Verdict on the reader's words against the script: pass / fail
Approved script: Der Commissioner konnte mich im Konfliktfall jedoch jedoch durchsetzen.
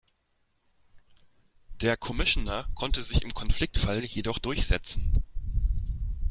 fail